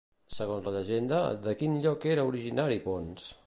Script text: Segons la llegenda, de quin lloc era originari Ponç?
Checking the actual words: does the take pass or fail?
pass